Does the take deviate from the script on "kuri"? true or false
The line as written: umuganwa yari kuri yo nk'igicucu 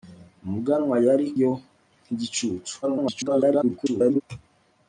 true